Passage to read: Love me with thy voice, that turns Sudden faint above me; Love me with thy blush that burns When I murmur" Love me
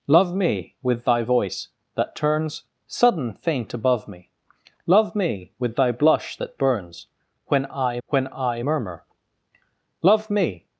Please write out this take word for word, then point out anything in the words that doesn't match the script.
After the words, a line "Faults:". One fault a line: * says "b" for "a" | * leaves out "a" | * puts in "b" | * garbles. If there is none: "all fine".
Love me with thy voice, that turns Sudden faint above me; Love me with thy blush that burns When I When I murmur" Love me
Faults:
* puts in "When I"